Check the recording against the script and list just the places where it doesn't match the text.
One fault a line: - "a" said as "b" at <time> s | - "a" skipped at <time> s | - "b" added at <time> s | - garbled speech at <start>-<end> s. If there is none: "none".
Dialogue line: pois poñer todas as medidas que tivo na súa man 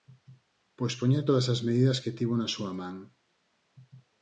none